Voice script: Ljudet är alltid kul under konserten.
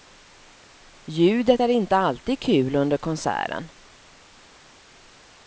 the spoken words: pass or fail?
fail